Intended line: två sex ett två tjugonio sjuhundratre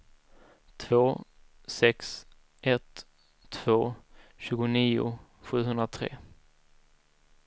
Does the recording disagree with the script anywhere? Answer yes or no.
no